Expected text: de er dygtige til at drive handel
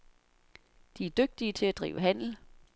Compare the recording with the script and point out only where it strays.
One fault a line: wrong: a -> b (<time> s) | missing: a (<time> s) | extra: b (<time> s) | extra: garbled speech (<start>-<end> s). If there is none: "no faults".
no faults